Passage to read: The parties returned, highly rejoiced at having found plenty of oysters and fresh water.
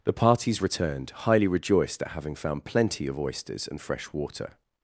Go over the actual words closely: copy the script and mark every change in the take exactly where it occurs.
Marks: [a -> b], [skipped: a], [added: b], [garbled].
The parties returned, highly rejoiced at having found plenty of oysters and fresh water.